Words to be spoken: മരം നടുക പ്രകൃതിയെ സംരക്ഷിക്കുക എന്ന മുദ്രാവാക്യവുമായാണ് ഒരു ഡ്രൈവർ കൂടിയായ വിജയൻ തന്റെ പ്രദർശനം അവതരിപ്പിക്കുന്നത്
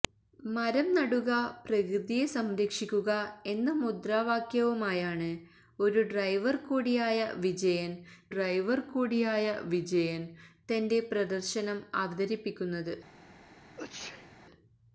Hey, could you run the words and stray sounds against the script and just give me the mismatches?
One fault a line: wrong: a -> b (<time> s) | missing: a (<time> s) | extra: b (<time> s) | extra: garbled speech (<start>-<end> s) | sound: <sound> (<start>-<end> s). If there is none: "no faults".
extra: ഡ്രൈവർ കൂടിയായ വിജയൻ (8.3 s)
sound: sneeze (13.8-14.3 s)